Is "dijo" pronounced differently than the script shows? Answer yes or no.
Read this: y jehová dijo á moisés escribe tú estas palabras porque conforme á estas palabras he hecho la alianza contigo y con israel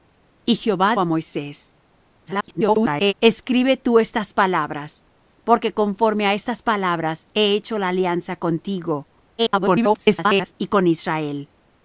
yes